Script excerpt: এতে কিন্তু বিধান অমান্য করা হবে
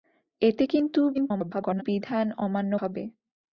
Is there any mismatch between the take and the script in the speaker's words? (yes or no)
yes